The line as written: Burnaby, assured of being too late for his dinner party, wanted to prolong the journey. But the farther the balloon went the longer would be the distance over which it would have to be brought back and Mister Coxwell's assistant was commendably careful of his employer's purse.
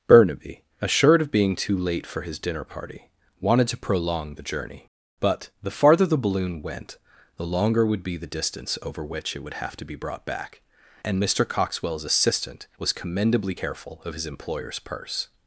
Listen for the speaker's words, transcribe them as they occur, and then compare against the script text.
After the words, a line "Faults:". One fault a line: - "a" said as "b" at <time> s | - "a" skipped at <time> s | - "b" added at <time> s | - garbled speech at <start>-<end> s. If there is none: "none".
Burnaby, assured of being too late for his dinner party, wanted to prolong the journey. But the farther the balloon went the longer would be the distance over which it would have to be brought back and Mister Coxwell's assistant was commendably careful of his employer's purse.
Faults:
none